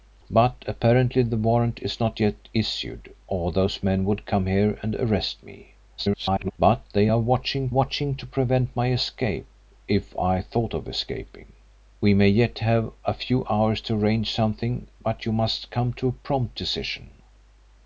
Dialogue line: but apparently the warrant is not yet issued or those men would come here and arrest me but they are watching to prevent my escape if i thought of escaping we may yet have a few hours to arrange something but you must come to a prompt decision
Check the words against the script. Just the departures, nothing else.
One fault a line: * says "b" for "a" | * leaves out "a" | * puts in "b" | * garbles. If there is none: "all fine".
* garbles
* puts in "watching"